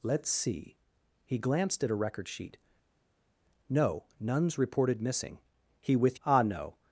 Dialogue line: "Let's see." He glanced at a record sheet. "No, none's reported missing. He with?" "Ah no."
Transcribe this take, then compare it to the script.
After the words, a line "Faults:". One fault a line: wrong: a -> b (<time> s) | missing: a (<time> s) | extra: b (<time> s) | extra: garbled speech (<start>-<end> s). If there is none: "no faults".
"Let's see." He glanced at a record sheet. "No, none's reported missing. He with?" "Ah no."
Faults:
no faults